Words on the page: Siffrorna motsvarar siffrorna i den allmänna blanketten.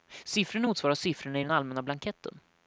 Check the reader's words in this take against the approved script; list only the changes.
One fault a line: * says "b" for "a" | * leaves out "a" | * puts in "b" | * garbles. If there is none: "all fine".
all fine